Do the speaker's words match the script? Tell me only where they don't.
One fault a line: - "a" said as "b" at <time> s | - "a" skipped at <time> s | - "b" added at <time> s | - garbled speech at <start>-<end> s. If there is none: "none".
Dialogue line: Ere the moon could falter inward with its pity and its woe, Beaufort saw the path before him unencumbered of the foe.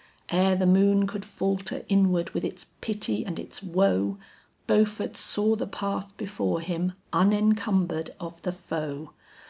none